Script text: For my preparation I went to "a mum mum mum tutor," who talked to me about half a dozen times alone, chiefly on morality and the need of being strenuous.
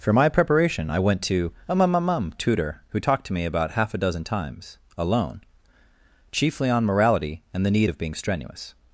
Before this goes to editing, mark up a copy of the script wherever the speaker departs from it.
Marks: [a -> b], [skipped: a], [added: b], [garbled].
For my preparation I went to "a mum mum mum tutor," who talked to me about half a dozen times alone, chiefly on morality and the need of being strenuous.